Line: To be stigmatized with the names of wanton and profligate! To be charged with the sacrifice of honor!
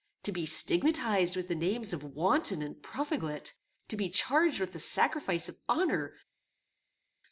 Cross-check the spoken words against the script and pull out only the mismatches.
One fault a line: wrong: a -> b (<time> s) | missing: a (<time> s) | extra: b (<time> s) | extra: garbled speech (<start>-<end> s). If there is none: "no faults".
no faults